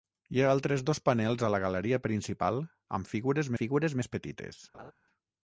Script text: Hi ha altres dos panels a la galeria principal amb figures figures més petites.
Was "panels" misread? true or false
false